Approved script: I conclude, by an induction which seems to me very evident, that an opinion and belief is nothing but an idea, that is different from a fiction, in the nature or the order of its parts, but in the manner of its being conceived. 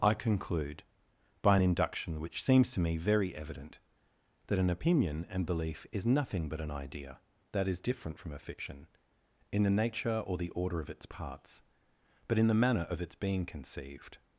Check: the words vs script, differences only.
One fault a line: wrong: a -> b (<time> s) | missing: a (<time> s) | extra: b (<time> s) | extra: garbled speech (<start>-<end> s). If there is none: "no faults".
no faults